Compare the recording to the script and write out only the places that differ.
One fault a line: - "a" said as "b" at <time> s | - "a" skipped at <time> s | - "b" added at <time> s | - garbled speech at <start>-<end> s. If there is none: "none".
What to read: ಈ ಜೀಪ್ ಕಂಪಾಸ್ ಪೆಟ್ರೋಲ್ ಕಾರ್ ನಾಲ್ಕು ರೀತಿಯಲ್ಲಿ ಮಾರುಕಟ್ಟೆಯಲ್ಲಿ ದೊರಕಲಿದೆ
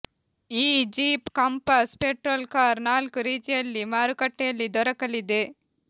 none